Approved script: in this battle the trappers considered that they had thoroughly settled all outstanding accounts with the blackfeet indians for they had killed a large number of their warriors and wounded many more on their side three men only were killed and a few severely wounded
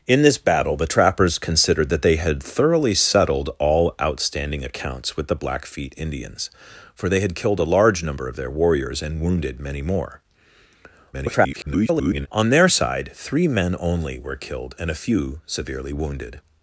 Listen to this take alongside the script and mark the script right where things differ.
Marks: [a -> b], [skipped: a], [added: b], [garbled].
in this battle the trappers considered that they had thoroughly settled all outstanding accounts with the blackfeet indians for they had killed a large number of their warriors and wounded many more [garbled] on their side three men only were killed and a few severely wounded